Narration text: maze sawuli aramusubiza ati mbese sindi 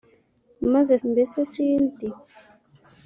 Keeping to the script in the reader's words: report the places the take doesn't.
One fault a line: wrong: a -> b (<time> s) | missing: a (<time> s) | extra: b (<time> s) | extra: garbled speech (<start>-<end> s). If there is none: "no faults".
missing: sawuli aramusubiza ati (0.9 s)